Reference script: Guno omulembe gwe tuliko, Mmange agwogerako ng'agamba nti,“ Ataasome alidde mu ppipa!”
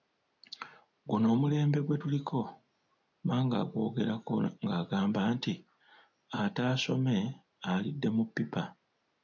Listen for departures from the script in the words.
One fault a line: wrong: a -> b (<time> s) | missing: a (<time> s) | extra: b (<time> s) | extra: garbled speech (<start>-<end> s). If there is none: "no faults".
no faults